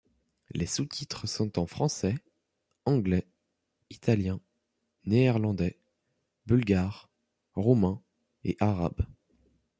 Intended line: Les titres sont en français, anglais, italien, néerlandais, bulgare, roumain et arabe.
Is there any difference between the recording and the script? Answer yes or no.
yes